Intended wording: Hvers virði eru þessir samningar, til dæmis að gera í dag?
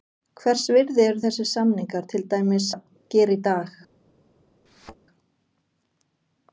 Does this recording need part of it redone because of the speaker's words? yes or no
no